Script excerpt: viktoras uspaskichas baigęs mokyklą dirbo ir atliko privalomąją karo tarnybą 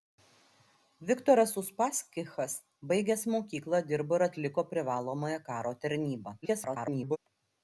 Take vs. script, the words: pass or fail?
fail